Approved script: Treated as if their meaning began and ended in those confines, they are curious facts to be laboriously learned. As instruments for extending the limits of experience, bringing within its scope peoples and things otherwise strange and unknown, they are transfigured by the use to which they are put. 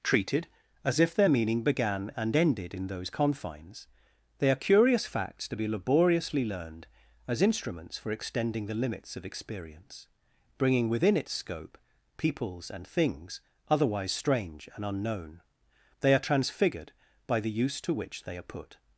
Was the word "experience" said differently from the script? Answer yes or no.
no